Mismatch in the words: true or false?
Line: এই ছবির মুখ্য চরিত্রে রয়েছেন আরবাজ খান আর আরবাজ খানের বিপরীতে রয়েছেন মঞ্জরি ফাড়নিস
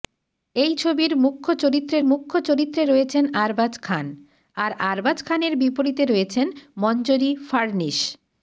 true